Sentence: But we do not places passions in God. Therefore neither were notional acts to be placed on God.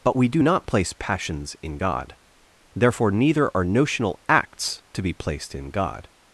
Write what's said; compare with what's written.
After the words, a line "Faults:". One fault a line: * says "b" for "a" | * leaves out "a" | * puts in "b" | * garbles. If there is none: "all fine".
But we do not place passions in God. Therefore neither are notional acts to be placed in God.
Faults:
* says "place" for "places"
* says "are" for "were"
* says "in" for "on"